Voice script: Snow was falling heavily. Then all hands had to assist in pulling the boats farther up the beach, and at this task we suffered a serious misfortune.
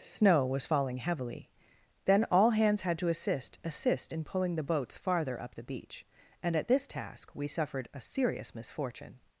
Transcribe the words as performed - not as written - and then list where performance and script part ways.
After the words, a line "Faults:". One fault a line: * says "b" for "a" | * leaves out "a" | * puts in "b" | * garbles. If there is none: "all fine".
Snow was falling heavily. Then all hands had to assist assist in pulling the boats farther up the beach, and at this task we suffered a serious misfortune.
Faults:
* puts in "assist"